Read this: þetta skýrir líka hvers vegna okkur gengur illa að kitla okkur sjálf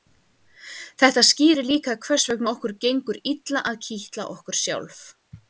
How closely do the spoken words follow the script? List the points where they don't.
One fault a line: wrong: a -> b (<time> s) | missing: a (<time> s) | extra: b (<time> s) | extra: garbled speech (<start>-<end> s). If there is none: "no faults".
no faults